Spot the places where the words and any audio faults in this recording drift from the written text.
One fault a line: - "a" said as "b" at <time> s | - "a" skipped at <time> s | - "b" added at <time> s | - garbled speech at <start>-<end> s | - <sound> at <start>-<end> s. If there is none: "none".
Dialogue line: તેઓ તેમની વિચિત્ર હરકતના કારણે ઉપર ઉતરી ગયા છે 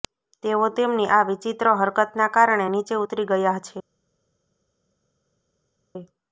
- "આ" added at 1.1 s
- "ઉપર" said as "નીચે" at 2.7 s